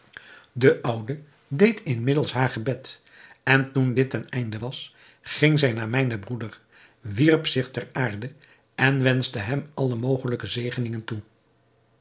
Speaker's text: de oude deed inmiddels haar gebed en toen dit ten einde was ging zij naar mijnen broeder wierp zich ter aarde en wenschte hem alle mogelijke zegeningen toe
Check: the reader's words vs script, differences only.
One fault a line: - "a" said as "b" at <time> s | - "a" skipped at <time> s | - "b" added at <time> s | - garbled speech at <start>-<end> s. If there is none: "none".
none